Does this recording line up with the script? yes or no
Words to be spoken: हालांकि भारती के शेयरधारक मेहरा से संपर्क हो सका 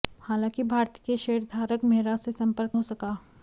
yes